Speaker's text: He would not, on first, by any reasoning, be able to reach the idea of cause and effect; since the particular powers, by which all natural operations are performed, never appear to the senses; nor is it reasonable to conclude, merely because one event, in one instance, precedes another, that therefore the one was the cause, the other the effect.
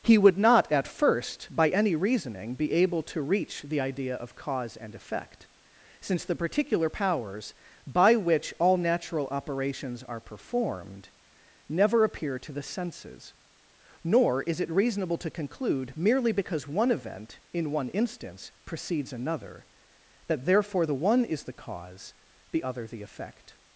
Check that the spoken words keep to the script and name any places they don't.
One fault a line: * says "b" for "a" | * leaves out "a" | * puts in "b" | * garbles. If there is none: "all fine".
* says "at" for "on"
* says "is" for "was"